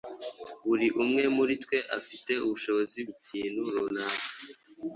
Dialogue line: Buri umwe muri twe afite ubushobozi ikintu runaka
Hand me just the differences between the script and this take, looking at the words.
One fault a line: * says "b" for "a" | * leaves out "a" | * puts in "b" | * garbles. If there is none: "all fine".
all fine